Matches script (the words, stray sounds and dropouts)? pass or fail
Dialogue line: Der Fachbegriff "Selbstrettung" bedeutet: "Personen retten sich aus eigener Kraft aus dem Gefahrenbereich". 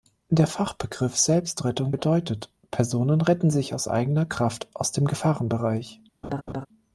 fail